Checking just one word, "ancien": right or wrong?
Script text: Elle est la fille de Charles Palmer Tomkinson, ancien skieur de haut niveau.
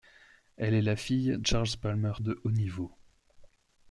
wrong